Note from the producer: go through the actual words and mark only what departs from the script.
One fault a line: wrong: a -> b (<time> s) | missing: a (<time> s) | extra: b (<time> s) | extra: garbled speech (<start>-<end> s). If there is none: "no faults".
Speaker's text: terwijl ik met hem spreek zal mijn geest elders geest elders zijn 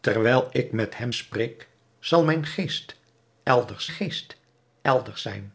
no faults